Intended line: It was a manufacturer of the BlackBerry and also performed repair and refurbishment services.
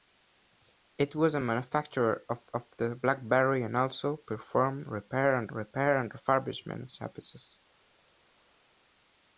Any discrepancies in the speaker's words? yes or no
yes